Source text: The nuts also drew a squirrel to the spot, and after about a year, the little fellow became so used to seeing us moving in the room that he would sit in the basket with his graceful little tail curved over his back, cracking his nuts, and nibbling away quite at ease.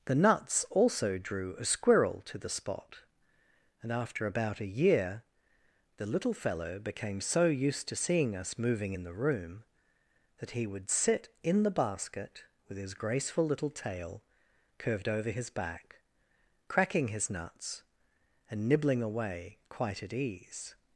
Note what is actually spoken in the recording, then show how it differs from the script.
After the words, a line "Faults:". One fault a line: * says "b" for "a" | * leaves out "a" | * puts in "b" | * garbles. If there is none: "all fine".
The nuts also drew a squirrel to the spot, and after about a year, the little fellow became so used to seeing us moving in the room that he would sit in the basket with his graceful little tail curved over his back, cracking his nuts, and nibbling away quite at ease.
Faults:
all fine